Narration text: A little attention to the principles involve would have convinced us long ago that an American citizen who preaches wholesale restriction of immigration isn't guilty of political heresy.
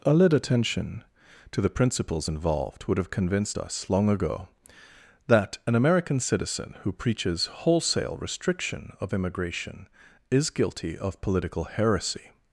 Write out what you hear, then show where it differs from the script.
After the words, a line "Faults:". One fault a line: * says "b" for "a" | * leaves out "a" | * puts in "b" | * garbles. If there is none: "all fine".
A little attention to the principles involved would have convinced us long ago that an American citizen who preaches wholesale restriction of immigration is guilty of political heresy.
Faults:
* says "involved" for "involve"
* says "is" for "isn't"